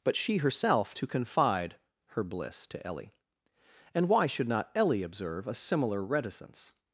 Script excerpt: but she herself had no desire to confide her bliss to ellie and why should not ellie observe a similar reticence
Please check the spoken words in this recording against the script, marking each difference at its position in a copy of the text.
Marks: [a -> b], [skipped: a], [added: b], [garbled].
but she herself [skipped: had no desire] to confide her bliss to ellie and why should not ellie observe a similar reticence